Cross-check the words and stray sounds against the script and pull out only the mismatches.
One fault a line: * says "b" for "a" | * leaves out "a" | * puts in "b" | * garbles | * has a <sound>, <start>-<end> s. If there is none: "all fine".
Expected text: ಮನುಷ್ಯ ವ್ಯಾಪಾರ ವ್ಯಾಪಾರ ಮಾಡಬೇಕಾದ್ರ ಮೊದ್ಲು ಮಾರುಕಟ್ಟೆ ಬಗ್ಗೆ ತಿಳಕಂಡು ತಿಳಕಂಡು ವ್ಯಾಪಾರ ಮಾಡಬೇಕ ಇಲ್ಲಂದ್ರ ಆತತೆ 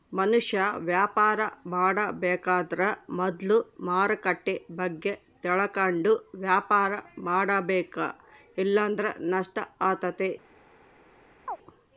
* leaves out "ವ್ಯಾಪಾರ"
* leaves out "ತಿಳಕಂಡು"
* puts in "ನಷ್ಟ"
* has a chirp, 11.5-11.6 s